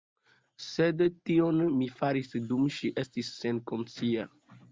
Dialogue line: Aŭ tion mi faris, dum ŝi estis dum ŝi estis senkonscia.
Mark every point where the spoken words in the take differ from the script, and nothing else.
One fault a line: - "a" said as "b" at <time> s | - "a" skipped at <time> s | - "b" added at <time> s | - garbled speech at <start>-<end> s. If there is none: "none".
- "Aŭ" said as "Sed" at 0.7 s
- "dum ŝi estis" skipped at 3.3 s